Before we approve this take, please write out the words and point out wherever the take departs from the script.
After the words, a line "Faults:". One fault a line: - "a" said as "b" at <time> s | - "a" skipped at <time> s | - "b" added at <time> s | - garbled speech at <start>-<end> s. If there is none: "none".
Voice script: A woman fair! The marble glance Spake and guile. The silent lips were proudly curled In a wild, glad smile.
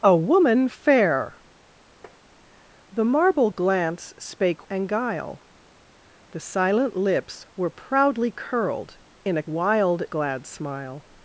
A woman fair! The marble glance Spake and guile. The silent lips were proudly curled In a wild, glad smile.
Faults:
none